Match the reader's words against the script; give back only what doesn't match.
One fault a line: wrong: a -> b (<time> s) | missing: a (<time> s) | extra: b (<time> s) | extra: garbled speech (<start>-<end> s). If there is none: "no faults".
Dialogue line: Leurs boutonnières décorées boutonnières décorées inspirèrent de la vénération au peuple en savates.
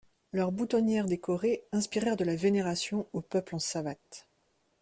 missing: boutonnières décorées (1.6 s)